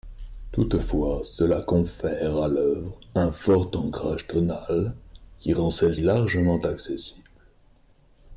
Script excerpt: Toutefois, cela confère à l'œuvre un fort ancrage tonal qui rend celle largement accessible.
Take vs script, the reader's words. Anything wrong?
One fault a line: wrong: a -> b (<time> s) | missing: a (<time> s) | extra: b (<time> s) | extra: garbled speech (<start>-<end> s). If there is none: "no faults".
no faults